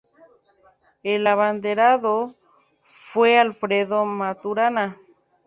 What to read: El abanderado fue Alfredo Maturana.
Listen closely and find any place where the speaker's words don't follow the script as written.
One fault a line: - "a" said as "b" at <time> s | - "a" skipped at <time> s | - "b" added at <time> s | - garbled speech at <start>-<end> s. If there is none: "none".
none